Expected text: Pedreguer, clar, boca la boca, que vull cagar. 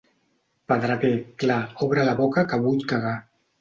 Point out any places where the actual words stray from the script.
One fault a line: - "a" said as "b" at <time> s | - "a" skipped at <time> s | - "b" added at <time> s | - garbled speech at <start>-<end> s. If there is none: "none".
- "boca" said as "obre" at 1.9 s